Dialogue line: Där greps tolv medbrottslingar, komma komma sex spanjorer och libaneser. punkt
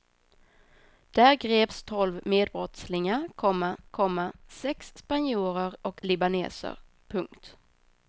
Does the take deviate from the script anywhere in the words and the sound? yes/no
no